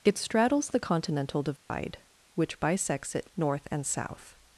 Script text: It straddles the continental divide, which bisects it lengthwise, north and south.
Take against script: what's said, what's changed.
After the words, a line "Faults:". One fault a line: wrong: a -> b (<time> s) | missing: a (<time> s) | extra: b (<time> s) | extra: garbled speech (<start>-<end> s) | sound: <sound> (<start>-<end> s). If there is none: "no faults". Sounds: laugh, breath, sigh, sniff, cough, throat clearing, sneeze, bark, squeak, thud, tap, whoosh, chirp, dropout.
It straddles the continental divide, which bisects it north and south.
Faults:
sound: dropout (1.6-1.7 s)
missing: lengthwise (3.3 s)